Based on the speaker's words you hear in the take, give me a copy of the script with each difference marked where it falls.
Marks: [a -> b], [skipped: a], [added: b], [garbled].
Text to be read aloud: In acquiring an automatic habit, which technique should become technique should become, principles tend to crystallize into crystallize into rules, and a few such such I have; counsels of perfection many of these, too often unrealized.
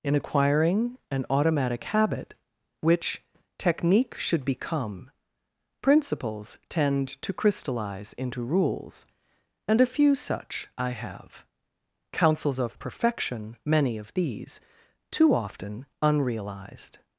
In acquiring an automatic habit, which technique should become [skipped: technique should become,] principles tend to crystallize into [skipped: crystallize into] rules, and a few such [skipped: such] I have; counsels of perfection many of these, too often unrealized.